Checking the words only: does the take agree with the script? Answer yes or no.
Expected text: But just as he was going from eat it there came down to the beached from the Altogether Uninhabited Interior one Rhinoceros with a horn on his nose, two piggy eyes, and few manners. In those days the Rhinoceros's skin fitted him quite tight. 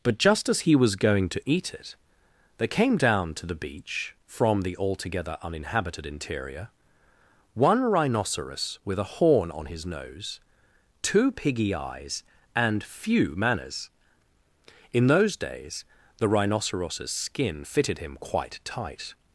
no